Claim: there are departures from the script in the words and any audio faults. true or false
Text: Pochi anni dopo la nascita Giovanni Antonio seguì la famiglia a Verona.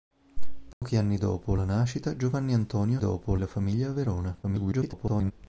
true